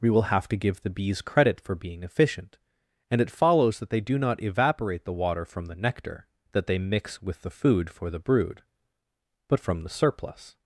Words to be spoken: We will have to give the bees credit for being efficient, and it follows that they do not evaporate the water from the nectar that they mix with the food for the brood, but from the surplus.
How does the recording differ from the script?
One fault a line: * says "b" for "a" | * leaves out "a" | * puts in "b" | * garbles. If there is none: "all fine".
all fine